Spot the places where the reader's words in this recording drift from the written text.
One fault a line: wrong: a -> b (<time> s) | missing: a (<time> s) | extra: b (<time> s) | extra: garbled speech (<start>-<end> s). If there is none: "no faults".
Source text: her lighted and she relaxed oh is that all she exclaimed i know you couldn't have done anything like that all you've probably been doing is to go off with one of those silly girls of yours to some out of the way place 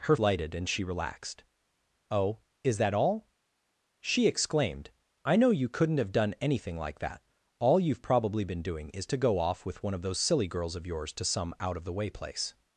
no faults